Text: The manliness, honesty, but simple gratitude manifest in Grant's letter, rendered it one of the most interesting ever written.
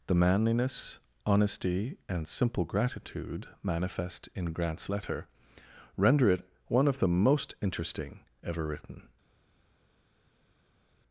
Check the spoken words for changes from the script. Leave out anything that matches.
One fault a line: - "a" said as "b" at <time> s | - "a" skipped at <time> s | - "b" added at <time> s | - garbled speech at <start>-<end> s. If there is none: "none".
- "but" said as "and" at 2.1 s
- "rendered" said as "render" at 6.0 s